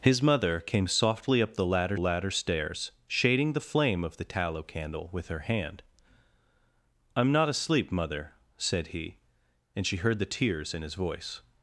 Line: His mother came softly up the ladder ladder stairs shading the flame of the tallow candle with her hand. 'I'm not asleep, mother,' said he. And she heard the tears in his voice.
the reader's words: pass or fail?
pass